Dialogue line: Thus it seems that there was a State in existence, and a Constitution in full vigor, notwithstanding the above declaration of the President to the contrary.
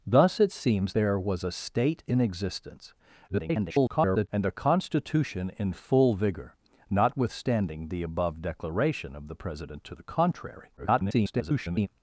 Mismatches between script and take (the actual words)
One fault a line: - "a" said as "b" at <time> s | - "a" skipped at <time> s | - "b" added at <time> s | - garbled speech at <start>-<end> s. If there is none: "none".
- "that" skipped at 0.9 s
- garbled speech at 3.3-4.3 s
- garbled speech at 10.8-11.9 s